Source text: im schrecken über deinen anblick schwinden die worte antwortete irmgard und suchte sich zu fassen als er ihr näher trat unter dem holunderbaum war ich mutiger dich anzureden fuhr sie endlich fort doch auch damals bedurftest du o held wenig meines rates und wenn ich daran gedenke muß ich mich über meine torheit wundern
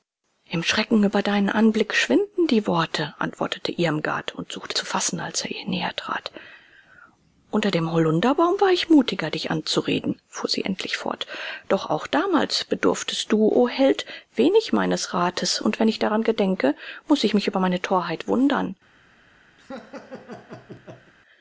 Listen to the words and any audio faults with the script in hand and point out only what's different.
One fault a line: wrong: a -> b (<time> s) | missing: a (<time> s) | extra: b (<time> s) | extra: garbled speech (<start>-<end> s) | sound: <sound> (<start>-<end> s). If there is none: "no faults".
missing: sich (4.8 s)
sound: laugh (19.6-21.1 s)